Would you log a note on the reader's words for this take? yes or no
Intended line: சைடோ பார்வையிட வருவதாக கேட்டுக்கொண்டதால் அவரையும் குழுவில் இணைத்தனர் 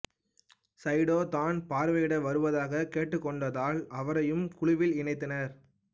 yes